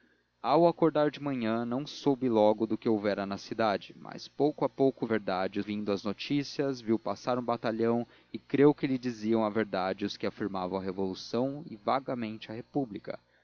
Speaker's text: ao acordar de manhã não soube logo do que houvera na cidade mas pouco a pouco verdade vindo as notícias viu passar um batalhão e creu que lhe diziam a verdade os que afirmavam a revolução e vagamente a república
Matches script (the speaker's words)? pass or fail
pass